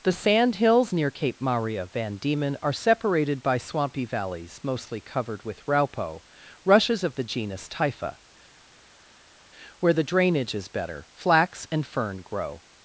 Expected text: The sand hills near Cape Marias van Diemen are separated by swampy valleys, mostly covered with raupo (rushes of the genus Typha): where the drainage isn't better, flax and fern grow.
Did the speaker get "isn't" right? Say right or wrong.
wrong